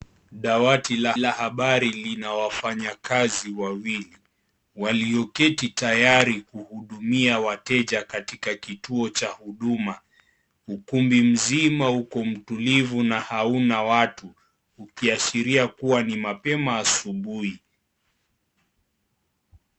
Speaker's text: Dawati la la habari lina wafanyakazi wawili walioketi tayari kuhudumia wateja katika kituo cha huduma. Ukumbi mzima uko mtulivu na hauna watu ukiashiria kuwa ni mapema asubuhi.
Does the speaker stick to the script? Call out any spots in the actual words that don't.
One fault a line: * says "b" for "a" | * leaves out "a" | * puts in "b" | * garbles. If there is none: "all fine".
all fine